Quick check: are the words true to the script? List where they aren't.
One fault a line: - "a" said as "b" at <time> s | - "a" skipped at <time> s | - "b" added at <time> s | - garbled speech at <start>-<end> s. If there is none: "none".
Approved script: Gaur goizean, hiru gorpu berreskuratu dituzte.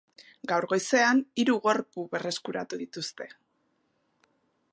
none